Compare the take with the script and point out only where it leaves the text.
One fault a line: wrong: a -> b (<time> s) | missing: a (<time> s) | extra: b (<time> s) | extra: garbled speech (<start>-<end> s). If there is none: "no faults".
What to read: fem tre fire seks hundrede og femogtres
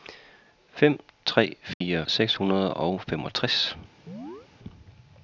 no faults